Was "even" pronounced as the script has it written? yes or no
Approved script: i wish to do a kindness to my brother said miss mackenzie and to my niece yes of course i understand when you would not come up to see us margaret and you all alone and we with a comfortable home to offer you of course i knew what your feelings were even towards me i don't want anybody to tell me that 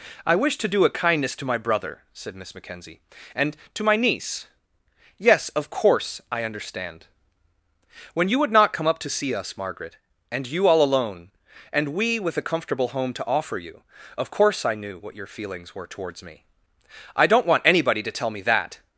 no